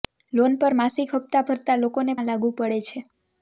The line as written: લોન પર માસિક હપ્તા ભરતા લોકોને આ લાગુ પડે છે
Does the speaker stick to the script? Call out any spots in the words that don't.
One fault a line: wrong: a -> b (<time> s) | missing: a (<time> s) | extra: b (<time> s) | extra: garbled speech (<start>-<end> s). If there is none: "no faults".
no faults